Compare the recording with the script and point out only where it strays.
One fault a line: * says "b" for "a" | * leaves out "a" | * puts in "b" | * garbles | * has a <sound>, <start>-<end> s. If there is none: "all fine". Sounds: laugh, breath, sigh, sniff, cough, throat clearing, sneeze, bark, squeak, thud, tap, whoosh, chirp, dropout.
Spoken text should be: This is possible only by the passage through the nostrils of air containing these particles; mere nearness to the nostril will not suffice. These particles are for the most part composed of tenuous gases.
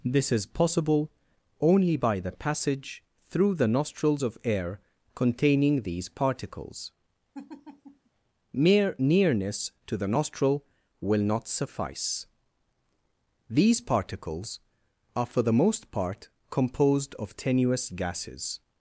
* has a laugh, 7.3-8.1 s